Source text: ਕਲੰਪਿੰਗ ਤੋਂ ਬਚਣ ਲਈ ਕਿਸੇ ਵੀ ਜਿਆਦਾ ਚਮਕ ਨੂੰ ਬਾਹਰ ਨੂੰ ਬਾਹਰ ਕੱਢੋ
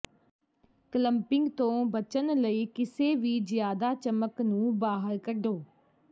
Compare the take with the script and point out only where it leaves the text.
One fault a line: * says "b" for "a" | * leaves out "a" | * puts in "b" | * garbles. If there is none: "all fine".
* leaves out "ਨੂੰ ਬਾਹਰ"